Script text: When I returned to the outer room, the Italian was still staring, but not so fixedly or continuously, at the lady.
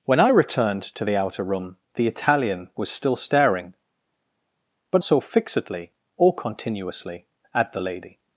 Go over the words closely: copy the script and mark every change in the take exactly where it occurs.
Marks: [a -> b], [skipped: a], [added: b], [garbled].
When I returned to the outer room, the Italian was still staring, but [skipped: not] so fixedly or continuously, at the lady.